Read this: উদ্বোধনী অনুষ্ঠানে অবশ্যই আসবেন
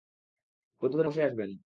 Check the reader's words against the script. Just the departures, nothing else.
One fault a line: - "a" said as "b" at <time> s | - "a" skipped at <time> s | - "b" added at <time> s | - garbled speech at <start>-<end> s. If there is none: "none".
- "অনুষ্ঠানে" skipped at 1.1 s